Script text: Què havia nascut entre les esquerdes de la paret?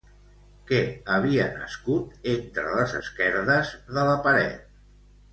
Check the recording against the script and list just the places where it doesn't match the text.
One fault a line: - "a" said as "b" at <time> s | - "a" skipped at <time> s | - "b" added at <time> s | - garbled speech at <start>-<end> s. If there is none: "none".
none